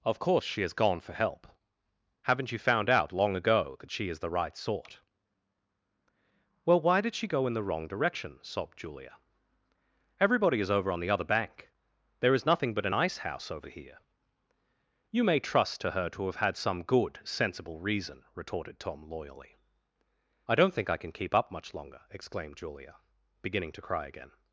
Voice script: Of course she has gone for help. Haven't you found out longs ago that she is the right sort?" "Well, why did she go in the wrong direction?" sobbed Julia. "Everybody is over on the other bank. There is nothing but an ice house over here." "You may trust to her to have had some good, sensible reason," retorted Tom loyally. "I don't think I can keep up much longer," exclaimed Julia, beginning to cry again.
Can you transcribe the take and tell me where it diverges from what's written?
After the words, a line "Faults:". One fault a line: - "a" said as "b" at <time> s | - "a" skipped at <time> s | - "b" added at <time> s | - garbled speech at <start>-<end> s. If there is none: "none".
Of course she has gone for help. Haven't you found out long ago that she is the right sort?" "Well, why did she go in the wrong direction?" sobbed Julia. "Everybody is over on the other bank. There is nothing but an ice house over here." "You may trust to her to have had some good, sensible reason," retorted Tom loyally. "I don't think I can keep up much longer," exclaimed Julia, beginning to cry again.
Faults:
- "longs" said as "long" at 3.1 s